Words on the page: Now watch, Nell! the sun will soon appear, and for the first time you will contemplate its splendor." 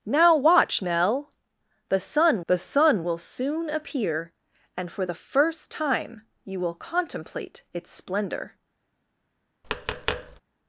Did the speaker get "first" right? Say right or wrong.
right